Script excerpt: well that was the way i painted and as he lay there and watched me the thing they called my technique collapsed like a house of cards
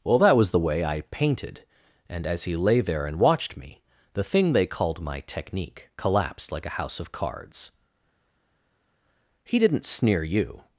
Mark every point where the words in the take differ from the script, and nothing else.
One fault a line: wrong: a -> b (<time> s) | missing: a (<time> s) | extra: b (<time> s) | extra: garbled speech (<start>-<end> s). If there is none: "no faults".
extra: he didn't sneer you (9.4 s)